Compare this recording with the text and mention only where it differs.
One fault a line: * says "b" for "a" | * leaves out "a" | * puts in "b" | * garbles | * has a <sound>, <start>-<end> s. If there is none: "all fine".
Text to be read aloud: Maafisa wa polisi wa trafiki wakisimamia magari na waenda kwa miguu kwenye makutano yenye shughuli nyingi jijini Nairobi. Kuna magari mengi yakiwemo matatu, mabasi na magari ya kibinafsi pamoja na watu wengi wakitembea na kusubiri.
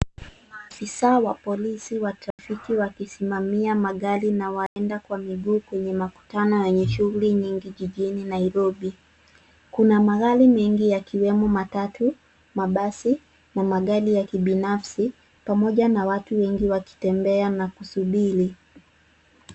* has a dropout, 2.3-2.4 s
* has a dropout, 4.7-4.8 s